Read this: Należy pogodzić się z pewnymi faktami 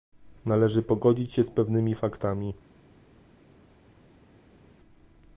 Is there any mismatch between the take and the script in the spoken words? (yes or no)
no